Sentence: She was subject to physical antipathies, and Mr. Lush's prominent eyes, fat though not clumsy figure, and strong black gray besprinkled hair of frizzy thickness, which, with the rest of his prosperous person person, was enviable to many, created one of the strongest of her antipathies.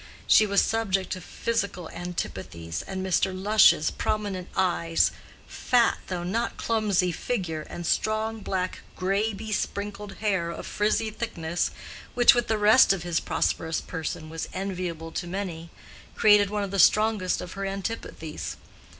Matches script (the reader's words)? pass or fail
fail